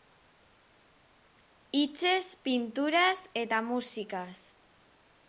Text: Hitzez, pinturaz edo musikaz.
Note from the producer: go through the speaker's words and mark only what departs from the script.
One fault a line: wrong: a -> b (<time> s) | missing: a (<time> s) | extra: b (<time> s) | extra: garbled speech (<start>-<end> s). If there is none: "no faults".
wrong: edo -> eta (3.4 s)